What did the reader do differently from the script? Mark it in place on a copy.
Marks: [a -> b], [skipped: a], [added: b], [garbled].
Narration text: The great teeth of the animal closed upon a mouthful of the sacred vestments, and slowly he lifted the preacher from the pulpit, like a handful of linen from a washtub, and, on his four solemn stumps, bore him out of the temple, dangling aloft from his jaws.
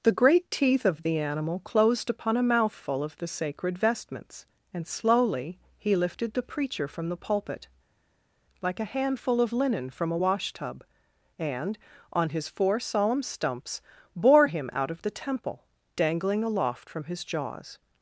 The great teeth of the animal closed upon a mouthful of the sacred vestments, and slowly he lifted the preacher from the pulpit, like a handful of linen from a washtub, and, on his four solemn stumps, bore him out of the temple, dangling aloft from his jaws.